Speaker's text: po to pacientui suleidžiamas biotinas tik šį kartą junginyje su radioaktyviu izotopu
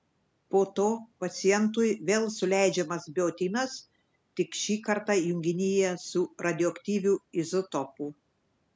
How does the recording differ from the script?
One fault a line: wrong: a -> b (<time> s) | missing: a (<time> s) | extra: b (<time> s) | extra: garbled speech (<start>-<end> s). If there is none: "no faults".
extra: vėl (2.1 s)